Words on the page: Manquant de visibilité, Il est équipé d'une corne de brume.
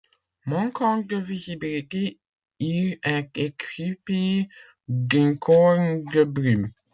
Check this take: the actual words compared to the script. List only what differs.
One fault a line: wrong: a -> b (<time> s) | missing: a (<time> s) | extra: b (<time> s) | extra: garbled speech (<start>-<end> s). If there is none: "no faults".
no faults